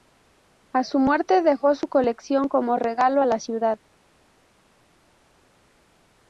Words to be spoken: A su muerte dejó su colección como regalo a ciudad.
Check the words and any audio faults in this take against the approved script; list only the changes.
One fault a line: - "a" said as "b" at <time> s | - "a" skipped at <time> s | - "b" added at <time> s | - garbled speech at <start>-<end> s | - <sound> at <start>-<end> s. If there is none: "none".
- "la" added at 3.2 s